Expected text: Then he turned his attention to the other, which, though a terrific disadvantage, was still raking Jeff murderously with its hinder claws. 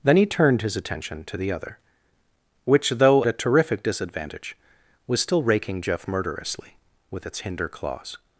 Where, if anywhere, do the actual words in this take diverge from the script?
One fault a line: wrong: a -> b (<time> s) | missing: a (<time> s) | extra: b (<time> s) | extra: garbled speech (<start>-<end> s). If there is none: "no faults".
no faults